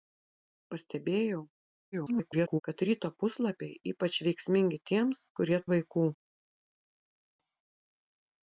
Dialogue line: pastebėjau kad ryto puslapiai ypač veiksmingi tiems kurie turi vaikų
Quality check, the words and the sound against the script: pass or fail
fail